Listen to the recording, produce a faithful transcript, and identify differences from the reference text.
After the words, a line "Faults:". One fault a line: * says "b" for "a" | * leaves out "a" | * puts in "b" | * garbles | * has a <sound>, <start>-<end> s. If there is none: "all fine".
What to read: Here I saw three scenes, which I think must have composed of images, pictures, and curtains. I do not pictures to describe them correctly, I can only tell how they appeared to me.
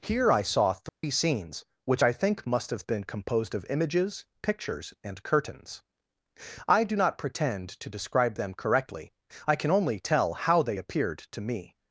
Here I saw three scenes, which I think must have been composed of images, pictures, and curtains. I do not pretend to describe them correctly, I can only tell how they appeared to me.
Faults:
* has a dropout, 0.9-1.0 s
* puts in "been"
* says "pretend" for "pictures"